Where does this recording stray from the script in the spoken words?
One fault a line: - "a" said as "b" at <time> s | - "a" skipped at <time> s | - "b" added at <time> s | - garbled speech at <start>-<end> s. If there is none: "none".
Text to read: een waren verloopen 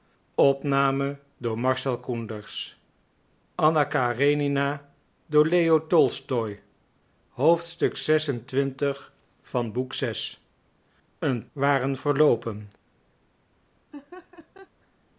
none